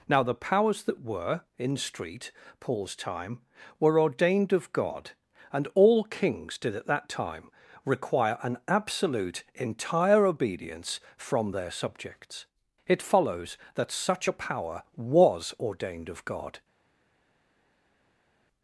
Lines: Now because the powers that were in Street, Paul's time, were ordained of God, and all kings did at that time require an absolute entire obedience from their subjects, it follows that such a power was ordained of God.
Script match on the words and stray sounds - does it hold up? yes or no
no